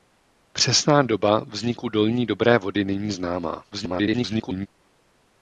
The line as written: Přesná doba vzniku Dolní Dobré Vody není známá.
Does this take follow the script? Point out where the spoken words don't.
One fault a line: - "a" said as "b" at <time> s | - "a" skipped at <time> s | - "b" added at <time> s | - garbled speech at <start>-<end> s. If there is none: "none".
- garbled speech at 3.7-4.7 s